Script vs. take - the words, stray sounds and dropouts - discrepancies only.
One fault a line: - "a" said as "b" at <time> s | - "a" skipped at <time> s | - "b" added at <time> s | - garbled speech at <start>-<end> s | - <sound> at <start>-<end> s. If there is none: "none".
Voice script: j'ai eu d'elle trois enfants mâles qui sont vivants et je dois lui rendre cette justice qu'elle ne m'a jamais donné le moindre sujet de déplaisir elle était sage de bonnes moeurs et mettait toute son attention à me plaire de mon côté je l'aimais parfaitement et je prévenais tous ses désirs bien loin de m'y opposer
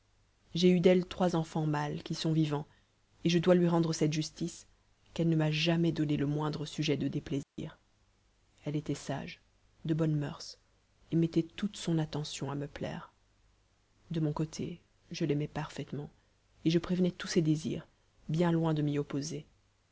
- dropout at 7.4-7.6 s